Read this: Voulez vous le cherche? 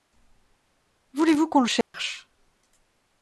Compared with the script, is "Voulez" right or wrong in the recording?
right